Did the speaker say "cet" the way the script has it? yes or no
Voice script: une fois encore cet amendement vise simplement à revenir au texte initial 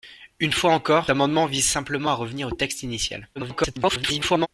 no